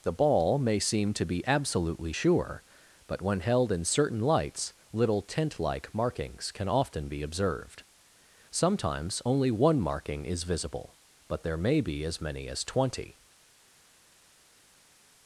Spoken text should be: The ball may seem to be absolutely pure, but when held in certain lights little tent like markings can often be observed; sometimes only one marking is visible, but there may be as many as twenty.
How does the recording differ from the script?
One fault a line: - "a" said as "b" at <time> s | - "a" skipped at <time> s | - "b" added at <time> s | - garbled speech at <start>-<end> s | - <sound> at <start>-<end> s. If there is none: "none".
- "pure" said as "sure" at 2.1 s